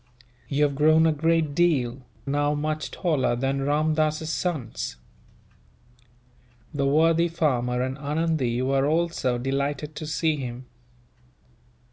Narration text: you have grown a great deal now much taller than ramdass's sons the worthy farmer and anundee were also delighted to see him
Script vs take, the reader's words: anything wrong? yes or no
no